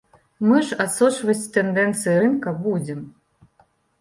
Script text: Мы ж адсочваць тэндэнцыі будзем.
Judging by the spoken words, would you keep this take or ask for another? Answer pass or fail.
fail